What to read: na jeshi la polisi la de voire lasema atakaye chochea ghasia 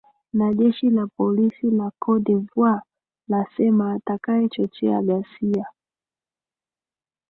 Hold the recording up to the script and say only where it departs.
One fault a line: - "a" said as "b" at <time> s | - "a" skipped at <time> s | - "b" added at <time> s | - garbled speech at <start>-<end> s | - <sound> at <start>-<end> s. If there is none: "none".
- "cote" added at 2.0 s